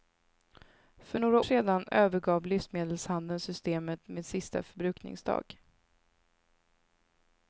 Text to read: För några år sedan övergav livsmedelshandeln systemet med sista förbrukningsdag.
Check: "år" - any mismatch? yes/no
yes